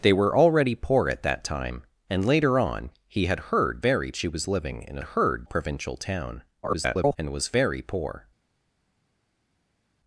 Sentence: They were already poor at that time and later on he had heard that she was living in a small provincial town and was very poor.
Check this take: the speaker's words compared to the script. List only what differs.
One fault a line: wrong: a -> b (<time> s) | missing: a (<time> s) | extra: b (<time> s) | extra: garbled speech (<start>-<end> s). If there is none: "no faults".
wrong: that -> very (3.8 s)
wrong: small -> heard (5.0 s)
extra: garbled speech (6.6-7.2 s)